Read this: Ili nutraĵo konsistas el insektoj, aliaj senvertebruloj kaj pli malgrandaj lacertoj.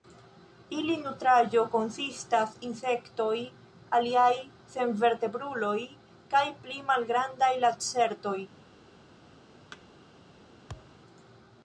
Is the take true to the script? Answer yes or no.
no